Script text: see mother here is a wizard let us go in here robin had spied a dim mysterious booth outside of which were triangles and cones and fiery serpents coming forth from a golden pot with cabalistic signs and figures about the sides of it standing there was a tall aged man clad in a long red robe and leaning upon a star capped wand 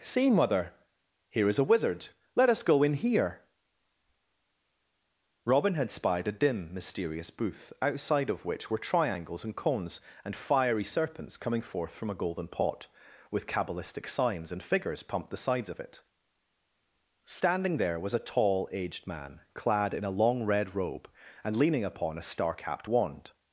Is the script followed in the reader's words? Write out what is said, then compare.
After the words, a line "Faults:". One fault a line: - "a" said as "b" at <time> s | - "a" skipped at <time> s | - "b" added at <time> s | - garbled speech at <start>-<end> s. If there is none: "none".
see mother here is a wizard let us go in here robin had spied a dim mysterious booth outside of which were triangles and cones and fiery serpents coming forth from a golden pot with cabalistic signs and figures pumped the sides of it standing there was a tall aged man clad in a long red robe and leaning upon a star capped wand
Faults:
- "about" said as "pumped" at 15.0 s